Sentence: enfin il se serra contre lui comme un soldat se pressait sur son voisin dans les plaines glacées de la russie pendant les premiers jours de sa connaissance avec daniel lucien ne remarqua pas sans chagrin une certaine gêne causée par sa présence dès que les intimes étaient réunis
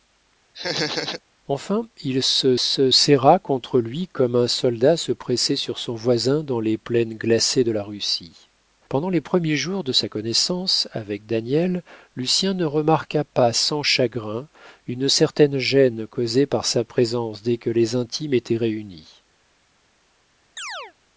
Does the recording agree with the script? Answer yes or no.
no